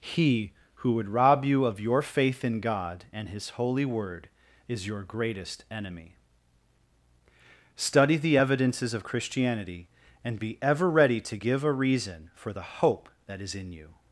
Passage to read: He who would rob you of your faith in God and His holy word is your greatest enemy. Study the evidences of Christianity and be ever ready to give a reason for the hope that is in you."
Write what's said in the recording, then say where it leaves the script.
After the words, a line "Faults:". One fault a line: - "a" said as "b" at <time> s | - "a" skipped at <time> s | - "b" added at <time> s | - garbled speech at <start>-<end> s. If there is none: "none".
He who would rob you of your faith in God and His holy word is your greatest enemy. Study the evidences of Christianity and be ever ready to give a reason for the hope that is in you."
Faults:
none